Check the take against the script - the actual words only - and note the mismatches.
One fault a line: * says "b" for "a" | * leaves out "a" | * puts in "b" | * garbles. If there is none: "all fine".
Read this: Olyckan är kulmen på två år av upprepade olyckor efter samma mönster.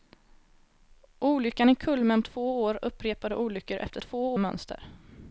* leaves out "på"
* leaves out "av"
* says "två" for "samma"